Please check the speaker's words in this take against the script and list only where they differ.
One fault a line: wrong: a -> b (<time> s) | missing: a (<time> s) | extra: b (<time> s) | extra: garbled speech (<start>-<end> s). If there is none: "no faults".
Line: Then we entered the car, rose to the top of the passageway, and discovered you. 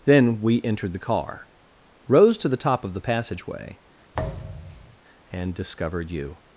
no faults